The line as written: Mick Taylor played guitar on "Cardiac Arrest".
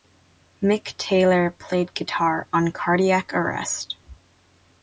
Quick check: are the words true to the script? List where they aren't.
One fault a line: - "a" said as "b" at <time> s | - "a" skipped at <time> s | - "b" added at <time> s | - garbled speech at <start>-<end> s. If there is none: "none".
none